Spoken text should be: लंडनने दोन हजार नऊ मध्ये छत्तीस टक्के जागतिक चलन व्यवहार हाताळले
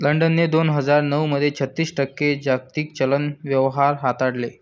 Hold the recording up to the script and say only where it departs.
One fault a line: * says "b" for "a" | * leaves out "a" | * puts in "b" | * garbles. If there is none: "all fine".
all fine